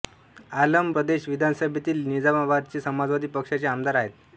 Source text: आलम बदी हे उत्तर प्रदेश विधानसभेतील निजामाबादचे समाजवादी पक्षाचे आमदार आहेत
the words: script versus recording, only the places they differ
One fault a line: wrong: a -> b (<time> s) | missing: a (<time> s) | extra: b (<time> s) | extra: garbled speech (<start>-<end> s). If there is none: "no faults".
missing: बदी हे उत्तर (0.9 s)